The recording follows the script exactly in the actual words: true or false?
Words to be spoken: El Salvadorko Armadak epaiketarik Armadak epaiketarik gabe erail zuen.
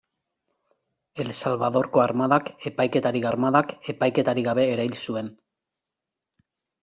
true